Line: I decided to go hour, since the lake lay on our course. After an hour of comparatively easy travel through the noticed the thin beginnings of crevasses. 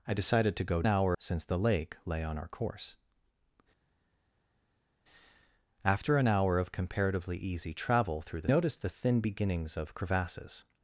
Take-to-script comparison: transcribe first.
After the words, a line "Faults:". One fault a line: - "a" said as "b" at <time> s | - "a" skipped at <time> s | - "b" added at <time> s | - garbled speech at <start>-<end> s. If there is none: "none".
I decided to go hour, since the lake lay on our course. After an hour of comparatively easy travel through the noticed the thin beginnings of crevasses.
Faults:
none